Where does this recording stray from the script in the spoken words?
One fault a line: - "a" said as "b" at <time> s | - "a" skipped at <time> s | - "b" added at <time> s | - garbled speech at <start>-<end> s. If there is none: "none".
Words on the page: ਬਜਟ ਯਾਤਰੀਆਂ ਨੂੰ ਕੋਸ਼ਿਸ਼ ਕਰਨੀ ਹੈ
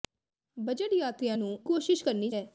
none